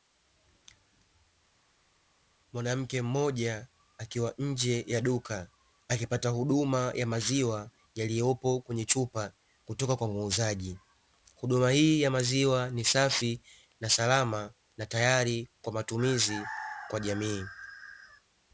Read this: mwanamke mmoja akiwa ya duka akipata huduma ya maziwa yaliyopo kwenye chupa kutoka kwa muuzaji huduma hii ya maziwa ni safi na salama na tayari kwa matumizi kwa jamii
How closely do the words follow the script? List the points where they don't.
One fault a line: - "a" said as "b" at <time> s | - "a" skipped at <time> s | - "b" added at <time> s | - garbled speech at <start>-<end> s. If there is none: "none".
- "nje" added at 4.4 s